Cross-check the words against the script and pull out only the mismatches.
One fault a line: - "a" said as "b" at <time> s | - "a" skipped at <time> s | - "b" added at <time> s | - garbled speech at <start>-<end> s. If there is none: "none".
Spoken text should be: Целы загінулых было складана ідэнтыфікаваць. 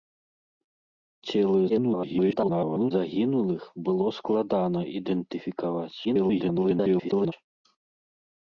- garbled speech at 1.7-2.9 s
- garbled speech at 6.0-7.3 s